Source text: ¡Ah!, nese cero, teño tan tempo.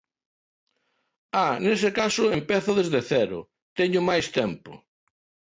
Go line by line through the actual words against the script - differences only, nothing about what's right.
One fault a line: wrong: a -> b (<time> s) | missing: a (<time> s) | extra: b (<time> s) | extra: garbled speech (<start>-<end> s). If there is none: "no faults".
extra: caso empezo desde (2.0 s)
wrong: tan -> máis (4.1 s)